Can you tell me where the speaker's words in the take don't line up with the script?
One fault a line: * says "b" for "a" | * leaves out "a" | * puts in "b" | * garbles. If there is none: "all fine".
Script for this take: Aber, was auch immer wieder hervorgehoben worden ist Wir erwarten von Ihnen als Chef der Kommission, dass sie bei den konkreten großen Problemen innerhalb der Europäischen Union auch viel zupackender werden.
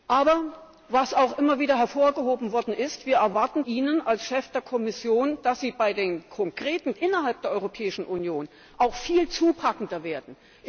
* leaves out "von"
* leaves out "großen Problemen"